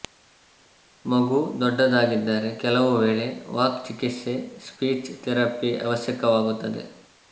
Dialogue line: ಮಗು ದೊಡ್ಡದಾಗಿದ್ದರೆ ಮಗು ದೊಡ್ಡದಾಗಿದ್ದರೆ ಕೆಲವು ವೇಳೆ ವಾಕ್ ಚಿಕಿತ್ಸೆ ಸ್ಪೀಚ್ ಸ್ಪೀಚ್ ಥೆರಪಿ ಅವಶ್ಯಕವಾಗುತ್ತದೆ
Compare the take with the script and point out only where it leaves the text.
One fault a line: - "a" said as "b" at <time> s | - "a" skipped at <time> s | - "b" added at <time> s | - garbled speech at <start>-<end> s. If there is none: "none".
- "ಮಗು ದೊಡ್ಡದಾಗಿದ್ದರೆ" skipped at 2.5 s
- "ಸ್ಪೀಚ್" skipped at 5.1 s